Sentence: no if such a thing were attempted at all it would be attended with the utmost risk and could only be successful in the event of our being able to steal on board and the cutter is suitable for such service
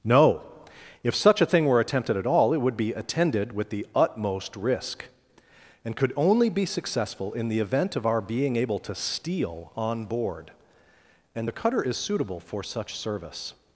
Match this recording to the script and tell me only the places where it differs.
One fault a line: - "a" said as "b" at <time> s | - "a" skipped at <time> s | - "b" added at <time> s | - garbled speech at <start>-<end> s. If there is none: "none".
none